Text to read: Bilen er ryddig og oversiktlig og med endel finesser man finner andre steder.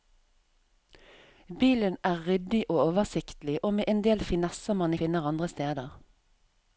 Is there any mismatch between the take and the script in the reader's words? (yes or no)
no